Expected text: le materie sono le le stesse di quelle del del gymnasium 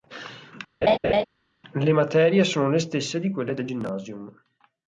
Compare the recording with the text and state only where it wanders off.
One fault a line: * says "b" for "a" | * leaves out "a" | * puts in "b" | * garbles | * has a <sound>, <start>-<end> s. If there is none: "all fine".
* has a laugh, 0.8-1.2 s
* leaves out "le"
* leaves out "del"